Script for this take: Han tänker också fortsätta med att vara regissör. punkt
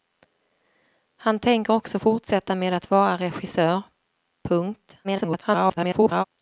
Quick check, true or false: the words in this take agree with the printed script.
false